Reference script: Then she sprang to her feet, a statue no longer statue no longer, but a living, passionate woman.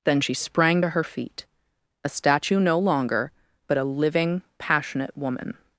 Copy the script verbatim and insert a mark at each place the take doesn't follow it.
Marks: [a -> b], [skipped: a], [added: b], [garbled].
Then she sprang to her feet, a statue no longer [skipped: statue no longer,] but a living, passionate woman.